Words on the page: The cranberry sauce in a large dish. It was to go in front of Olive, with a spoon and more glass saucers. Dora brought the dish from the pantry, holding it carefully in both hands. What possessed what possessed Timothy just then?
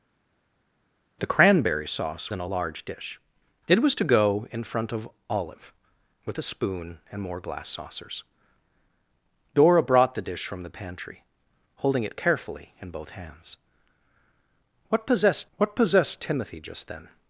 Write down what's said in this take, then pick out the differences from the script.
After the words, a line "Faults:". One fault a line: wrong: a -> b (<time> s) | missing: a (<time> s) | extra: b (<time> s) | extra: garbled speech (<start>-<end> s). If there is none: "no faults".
The cranberry sauce in a large dish. It was to go in front of Olive, with a spoon and more glass saucers. Dora brought the dish from the pantry, holding it carefully in both hands. What possessed what possessed Timothy just then?
Faults:
no faults